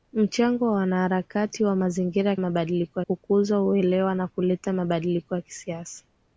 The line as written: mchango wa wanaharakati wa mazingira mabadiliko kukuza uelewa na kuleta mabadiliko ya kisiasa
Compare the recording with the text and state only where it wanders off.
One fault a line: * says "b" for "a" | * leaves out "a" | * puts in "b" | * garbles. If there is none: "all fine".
all fine